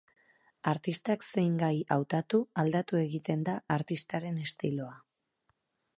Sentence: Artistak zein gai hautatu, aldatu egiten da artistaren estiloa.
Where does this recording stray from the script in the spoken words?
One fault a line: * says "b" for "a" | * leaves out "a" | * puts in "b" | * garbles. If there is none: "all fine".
all fine